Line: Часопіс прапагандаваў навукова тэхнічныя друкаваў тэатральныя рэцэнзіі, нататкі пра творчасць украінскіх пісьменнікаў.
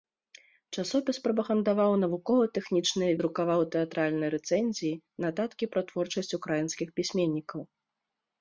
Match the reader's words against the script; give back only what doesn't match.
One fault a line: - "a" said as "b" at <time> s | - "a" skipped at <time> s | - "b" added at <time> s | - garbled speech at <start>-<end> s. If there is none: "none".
none